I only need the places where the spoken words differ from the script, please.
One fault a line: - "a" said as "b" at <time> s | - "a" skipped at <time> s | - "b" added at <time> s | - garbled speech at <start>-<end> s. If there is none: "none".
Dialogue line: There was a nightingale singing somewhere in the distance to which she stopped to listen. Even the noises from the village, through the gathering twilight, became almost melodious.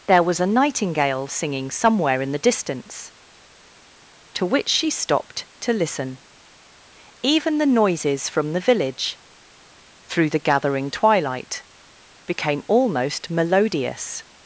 none